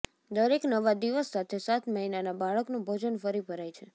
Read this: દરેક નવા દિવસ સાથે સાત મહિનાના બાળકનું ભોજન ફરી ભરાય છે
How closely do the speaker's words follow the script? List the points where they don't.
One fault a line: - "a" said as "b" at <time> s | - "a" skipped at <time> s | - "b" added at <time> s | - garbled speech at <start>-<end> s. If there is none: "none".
none